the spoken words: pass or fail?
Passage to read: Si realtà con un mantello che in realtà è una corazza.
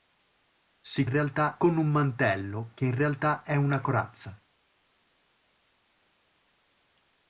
pass